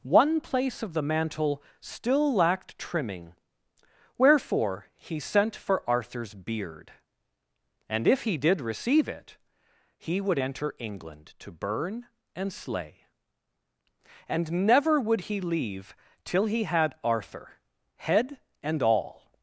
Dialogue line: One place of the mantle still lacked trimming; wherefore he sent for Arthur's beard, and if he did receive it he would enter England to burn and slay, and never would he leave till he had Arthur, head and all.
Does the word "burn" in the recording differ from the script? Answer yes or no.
no